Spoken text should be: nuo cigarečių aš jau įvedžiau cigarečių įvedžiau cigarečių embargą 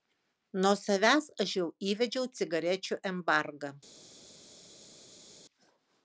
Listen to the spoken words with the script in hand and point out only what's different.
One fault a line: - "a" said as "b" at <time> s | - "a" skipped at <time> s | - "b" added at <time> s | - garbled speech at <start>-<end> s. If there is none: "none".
- "cigarečių" said as "savęs" at 0.8 s
- "įvedžiau cigarečių" skipped at 3.0 s